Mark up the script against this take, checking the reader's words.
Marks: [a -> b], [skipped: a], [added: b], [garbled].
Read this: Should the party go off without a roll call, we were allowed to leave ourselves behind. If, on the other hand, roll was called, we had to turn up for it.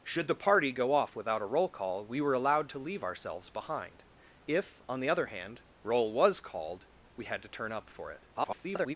Should the party go off without a roll call, we were allowed to leave ourselves behind. If, on the other hand, roll was called, we had to turn up for it. [garbled]